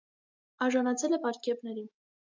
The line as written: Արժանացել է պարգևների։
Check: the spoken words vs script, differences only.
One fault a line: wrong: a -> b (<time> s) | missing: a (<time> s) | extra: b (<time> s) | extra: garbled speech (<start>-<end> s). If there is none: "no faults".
no faults